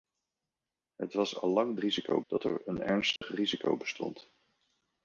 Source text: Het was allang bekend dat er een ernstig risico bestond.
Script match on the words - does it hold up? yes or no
no